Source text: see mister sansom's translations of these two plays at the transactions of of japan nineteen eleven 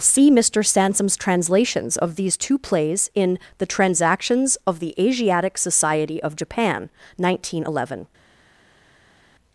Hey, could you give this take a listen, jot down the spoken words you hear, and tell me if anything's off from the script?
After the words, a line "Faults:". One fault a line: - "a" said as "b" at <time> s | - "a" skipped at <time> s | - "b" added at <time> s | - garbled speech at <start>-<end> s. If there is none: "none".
see mister sansom's translations of these two plays in the transactions of the asiatic society of japan nineteen eleven
Faults:
- "at" said as "in" at 3.1 s
- "the asiatic society" added at 4.8 s